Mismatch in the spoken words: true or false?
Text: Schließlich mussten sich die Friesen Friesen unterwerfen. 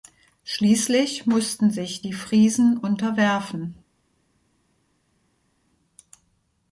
true